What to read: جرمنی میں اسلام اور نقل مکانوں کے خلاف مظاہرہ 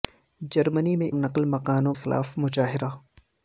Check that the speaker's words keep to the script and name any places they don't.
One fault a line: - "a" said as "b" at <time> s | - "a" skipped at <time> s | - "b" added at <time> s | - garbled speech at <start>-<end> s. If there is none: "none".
- "اسلام اور" skipped at 1.1 s
- "کے" skipped at 1.9 s